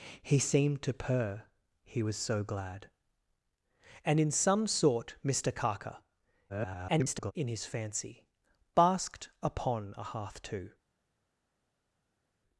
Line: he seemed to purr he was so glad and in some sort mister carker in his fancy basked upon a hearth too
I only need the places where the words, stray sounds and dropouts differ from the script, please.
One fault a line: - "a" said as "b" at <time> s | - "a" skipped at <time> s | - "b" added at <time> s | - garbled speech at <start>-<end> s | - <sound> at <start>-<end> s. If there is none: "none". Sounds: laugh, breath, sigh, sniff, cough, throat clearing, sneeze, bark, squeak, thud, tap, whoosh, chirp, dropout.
- garbled speech at 6.5-7.3 s